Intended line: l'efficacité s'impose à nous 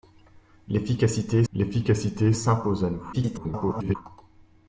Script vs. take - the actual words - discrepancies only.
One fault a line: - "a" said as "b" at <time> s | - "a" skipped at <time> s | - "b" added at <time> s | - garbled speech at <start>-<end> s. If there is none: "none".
- "l'efficacité" added at 1.5 s
- garbled speech at 3.1-4.0 s